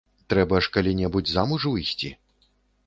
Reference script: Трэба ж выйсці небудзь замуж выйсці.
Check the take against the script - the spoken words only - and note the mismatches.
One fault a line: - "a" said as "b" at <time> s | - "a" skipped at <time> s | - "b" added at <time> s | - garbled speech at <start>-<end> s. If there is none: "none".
- "выйсці" said as "калі" at 0.8 s